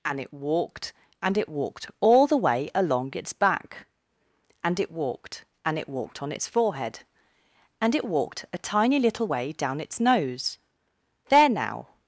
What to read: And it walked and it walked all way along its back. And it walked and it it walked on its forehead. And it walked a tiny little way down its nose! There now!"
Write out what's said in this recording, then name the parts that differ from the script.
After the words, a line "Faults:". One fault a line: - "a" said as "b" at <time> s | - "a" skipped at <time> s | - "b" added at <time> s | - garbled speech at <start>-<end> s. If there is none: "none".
And it walked and it walked all the way along its back. And it walked and it walked on its forehead. And it walked a tiny little way down its nose! There now!"
Faults:
- "the" added at 2.3 s
- "it" skipped at 5.9 s